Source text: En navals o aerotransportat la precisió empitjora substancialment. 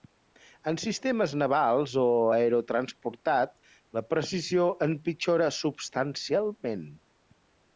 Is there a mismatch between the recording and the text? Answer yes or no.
yes